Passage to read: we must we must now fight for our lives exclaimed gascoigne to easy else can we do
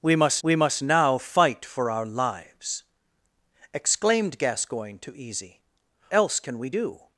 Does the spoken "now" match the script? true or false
true